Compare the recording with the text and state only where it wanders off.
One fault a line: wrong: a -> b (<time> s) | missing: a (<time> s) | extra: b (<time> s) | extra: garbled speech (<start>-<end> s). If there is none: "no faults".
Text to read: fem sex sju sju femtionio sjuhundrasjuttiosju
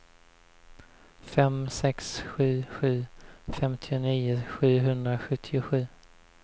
no faults